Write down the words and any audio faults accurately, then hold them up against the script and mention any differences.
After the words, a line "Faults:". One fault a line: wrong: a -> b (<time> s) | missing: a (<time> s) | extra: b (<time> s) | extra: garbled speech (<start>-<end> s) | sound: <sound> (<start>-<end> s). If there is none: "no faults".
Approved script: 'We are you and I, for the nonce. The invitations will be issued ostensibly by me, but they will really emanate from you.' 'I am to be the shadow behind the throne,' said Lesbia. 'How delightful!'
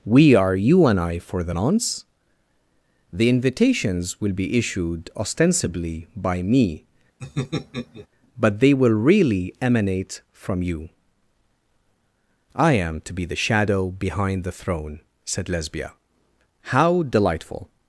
'We are you and I, for the nonce. The invitations will be issued ostensibly by me, but they will really emanate from you.' 'I am to be the shadow behind the throne,' said Lesbia. 'How delightful!'
Faults:
sound: laugh (7.2-8.1 s)